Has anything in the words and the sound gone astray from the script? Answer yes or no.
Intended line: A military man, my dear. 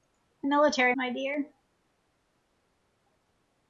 yes